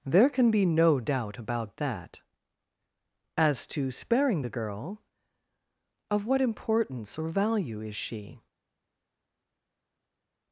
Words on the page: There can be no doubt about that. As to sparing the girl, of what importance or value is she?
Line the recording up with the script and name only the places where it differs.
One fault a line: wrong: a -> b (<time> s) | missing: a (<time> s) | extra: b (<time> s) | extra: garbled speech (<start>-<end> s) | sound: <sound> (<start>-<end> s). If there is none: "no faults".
no faults